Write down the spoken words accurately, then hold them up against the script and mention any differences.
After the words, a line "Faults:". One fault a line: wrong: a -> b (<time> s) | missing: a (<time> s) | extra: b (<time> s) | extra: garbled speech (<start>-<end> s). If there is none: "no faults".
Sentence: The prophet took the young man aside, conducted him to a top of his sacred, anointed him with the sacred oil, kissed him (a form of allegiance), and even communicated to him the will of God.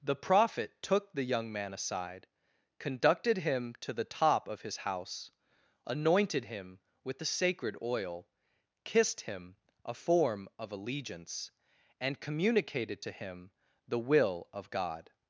The prophet took the young man aside, conducted him to the top of his house, anointed him with the sacred oil, kissed him (a form of allegiance), and communicated to him the will of God.
Faults:
wrong: a -> the (3.9 s)
wrong: sacred -> house (4.8 s)
missing: even (12.2 s)